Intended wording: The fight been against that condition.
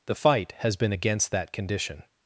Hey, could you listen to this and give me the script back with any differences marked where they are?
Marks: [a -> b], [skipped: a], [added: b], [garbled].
The fight [added: has] been against that condition.